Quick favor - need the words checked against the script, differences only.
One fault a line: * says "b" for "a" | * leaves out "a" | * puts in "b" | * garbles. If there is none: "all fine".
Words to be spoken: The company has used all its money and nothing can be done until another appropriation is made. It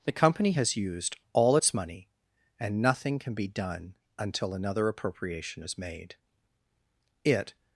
all fine